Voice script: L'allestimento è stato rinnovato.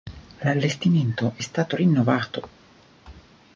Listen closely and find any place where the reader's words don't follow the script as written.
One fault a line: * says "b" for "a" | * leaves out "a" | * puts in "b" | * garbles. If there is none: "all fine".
all fine